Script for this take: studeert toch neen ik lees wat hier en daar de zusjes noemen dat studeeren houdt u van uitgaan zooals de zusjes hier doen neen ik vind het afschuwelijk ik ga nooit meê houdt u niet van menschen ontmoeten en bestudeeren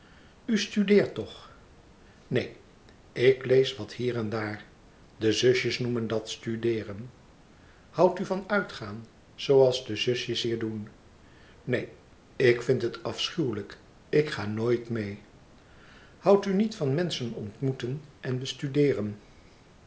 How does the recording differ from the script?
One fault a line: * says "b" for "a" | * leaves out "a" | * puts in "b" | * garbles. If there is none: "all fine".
all fine